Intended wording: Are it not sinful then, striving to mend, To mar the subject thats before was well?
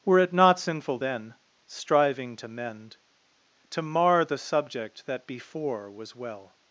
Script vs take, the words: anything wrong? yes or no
yes